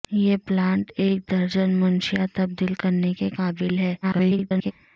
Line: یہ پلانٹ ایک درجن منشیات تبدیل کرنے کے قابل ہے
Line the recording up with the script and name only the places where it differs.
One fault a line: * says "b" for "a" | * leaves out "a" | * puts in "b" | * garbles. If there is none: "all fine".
* garbles